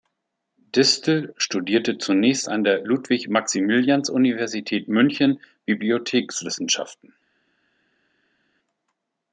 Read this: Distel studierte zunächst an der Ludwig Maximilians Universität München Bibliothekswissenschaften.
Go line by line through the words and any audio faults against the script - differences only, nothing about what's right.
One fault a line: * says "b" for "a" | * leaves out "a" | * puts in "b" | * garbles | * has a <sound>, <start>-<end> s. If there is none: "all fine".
all fine